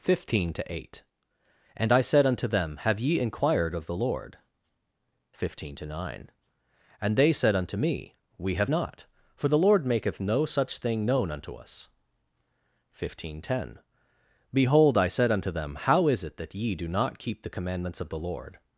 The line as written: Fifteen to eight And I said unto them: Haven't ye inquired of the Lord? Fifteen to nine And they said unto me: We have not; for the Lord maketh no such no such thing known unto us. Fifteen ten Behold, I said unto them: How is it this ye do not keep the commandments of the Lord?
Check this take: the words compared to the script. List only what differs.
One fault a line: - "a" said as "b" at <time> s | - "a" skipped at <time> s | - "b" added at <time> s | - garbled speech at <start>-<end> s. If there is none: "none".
- "Haven't" said as "Have" at 2.8 s
- "no such" skipped at 10.8 s
- "this" said as "that" at 16.4 s